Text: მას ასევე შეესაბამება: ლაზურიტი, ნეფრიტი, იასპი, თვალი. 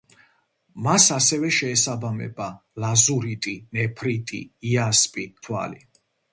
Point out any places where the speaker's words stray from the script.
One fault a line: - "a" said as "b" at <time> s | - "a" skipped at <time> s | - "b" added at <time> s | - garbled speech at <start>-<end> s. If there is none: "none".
none